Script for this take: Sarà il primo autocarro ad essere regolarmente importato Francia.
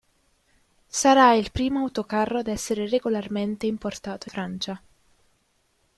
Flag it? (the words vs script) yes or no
no